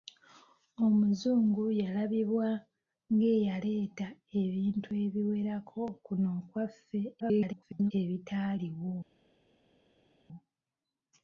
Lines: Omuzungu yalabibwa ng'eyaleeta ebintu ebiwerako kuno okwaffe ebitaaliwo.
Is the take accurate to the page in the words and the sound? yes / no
no